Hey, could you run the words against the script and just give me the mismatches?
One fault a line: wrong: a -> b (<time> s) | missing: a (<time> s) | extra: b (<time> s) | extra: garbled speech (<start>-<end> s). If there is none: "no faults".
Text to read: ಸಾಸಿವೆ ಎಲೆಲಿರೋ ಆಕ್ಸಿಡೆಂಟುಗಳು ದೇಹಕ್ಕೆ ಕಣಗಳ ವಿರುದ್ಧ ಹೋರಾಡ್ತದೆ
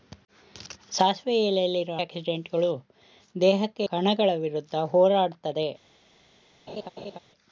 no faults